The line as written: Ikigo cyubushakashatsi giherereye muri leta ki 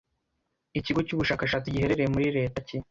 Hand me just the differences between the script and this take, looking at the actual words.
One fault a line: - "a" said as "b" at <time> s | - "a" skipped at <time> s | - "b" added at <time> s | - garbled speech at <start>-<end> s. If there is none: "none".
none